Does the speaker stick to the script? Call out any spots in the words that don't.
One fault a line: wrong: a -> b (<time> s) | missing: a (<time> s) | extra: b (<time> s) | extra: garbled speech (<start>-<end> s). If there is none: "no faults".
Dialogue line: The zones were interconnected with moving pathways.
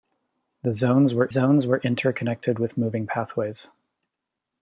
extra: zones were (1.3 s)